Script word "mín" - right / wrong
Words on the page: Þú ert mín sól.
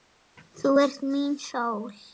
right